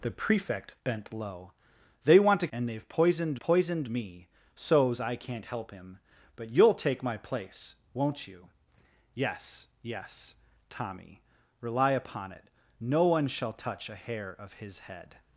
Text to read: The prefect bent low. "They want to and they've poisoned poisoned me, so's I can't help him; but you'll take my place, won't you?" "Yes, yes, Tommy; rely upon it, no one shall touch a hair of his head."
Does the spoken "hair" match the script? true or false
true